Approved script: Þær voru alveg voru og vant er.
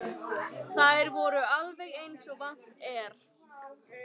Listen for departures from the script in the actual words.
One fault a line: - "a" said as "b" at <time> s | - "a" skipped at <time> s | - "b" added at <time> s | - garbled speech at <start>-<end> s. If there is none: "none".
- "voru" said as "eins" at 2.0 s